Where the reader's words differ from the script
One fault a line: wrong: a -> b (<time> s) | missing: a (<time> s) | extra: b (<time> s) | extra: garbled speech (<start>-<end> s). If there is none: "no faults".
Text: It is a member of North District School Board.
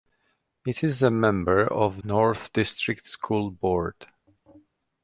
no faults